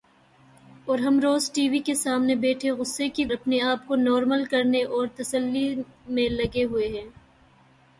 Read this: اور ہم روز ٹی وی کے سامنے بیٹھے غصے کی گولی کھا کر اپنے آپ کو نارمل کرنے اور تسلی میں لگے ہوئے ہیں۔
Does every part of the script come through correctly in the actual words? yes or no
no